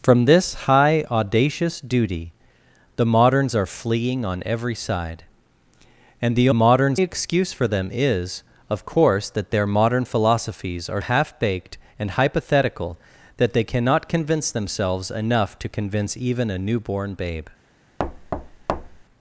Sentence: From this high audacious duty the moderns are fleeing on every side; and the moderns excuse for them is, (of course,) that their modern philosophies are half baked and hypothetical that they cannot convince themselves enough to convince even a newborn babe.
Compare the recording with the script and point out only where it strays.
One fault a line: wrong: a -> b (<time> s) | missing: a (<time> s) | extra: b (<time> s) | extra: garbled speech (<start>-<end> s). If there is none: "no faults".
no faults